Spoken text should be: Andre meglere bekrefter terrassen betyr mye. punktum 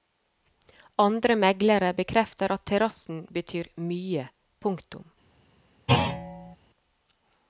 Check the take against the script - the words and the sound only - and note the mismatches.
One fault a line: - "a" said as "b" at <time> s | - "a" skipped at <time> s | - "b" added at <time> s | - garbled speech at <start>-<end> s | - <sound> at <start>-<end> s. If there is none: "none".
- "at" added at 2.6 s
- thud at 5.9-6.6 s